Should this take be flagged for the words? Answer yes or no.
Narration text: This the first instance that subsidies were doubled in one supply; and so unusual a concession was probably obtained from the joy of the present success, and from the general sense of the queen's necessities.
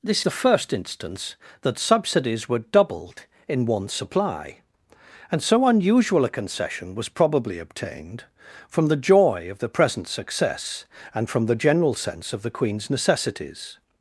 no